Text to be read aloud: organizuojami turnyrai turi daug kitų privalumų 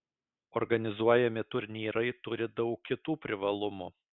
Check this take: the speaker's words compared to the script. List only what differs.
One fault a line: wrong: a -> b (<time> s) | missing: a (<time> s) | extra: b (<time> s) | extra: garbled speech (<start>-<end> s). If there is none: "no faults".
no faults